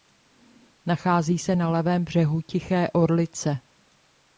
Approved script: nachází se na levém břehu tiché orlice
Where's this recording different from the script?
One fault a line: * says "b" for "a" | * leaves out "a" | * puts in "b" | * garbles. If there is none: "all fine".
all fine